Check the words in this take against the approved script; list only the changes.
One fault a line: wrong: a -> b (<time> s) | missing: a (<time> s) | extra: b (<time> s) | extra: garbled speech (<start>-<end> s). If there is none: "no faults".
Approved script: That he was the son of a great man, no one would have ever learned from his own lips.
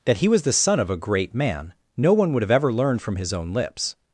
no faults